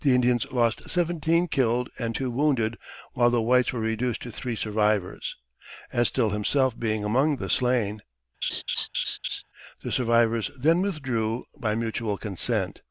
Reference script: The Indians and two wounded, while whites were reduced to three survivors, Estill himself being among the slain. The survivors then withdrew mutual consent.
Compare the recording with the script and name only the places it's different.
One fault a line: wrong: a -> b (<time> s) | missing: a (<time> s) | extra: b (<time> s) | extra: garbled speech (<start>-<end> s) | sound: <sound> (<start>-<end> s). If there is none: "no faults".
extra: lost seventeen killed (0.5 s)
extra: the (3.3 s)
sound: laugh (8.4-9.4 s)
extra: by (11.6 s)